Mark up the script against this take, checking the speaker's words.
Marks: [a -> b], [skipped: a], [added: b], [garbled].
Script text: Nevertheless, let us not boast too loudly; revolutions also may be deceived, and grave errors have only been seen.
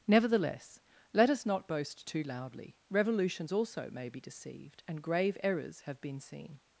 Nevertheless, let us not boast too loudly; revolutions also may be deceived, and grave errors have [skipped: only] been seen.